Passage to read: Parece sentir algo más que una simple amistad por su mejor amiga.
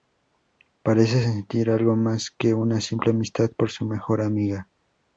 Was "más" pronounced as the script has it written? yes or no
yes